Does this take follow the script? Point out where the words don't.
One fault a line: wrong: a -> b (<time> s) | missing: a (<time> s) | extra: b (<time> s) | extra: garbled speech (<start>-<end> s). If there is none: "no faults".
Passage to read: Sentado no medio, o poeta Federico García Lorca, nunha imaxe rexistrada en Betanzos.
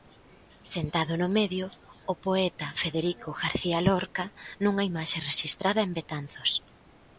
no faults